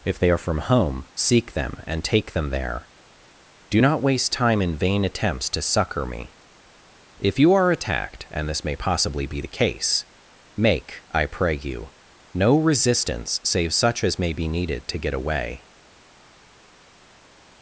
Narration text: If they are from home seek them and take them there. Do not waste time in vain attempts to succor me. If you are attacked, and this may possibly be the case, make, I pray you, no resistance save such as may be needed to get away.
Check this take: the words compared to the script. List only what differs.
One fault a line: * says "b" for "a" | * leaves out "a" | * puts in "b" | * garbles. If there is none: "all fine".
all fine